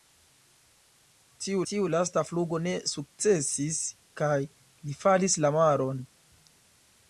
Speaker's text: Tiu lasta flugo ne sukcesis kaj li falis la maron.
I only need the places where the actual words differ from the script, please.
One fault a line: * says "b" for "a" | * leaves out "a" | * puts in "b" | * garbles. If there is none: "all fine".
* puts in "tiu"